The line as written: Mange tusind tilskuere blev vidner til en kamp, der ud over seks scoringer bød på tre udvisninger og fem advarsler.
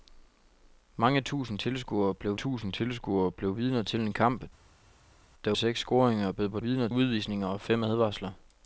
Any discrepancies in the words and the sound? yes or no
yes